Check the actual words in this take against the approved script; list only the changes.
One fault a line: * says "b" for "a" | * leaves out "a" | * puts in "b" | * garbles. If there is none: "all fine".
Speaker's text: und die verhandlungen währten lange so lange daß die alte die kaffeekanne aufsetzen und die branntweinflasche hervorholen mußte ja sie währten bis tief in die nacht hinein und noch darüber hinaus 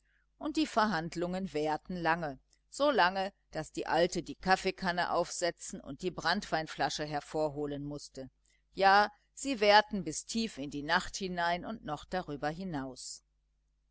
all fine